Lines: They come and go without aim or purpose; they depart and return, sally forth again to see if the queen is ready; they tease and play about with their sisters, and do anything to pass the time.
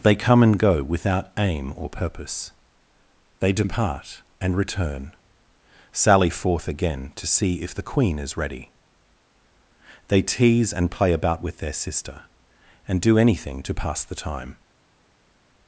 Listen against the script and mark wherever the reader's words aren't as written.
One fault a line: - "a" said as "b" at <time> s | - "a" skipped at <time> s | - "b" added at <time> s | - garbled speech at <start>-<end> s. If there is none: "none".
- "sisters" said as "sister" at 11.7 s